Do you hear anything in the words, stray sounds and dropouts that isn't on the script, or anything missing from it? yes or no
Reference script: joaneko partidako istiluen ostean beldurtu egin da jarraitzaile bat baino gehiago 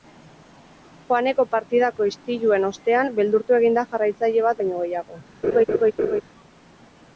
yes